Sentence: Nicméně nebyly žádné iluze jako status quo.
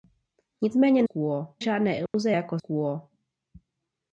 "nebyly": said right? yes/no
no